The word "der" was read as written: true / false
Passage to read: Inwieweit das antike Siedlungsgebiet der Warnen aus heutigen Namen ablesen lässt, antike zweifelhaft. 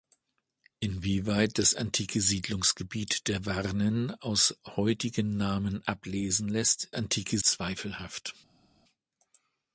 true